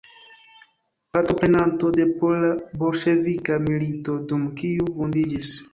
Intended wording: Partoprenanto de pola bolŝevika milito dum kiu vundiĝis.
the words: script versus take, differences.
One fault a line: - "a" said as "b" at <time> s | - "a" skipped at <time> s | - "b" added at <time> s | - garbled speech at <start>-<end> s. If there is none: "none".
none